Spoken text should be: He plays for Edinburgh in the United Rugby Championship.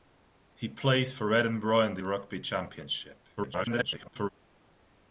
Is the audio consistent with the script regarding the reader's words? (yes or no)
no